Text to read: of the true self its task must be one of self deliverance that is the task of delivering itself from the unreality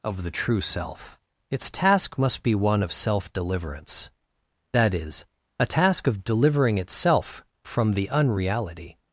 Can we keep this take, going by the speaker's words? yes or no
no